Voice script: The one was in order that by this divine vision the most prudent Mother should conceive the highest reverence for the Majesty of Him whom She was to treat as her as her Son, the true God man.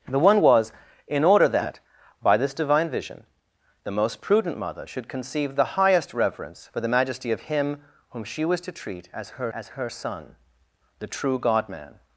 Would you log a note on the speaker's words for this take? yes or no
no